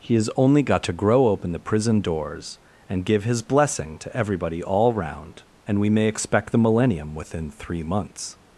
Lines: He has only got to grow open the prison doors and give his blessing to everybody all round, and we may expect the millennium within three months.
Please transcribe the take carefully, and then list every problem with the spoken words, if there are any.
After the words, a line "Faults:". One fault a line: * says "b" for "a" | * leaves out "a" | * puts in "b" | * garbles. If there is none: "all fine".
He has only got to grow open the prison doors and give his blessing to everybody all round, and we may expect the millennium within three months.
Faults:
all fine